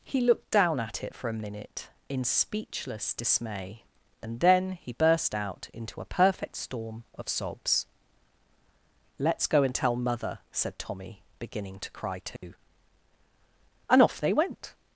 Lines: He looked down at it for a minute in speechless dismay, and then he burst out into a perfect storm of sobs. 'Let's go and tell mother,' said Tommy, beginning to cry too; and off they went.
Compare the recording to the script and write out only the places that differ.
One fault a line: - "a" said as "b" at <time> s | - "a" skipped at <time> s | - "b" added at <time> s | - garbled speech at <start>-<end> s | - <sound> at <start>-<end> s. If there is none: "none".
- dropout at 12.4-12.4 s